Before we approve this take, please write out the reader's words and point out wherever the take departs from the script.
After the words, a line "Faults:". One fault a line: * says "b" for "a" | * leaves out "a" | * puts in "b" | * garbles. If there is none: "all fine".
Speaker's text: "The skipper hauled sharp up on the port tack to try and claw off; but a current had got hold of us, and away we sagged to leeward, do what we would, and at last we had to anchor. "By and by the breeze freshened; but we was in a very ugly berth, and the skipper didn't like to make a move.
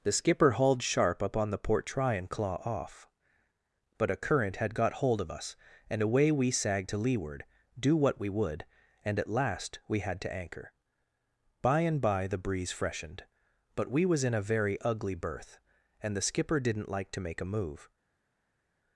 "The skipper hauled sharp up on the port try and claw off; but a current had got hold of us, and away we sagged to leeward, do what we would, and at last we had to anchor. "By and by the breeze freshened; but we was in a very ugly berth, and the skipper didn't like to make a move.
Faults:
* leaves out "tack to"